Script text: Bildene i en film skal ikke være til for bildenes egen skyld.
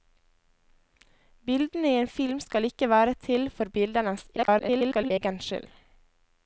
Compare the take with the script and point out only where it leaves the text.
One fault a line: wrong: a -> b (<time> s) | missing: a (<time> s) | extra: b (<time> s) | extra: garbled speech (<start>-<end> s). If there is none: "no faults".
extra: garbled speech (4.4-5.1 s)